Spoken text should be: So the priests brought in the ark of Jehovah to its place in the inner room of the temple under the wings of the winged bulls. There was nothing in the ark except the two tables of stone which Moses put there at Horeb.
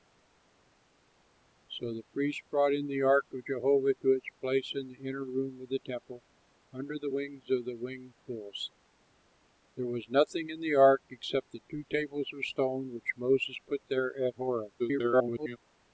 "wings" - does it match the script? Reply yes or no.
yes